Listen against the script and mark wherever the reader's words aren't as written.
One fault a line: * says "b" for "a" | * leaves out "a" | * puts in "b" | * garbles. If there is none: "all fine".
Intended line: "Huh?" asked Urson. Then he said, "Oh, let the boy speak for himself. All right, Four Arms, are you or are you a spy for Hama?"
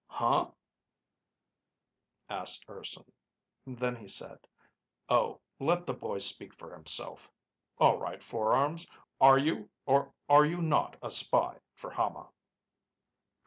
* puts in "not"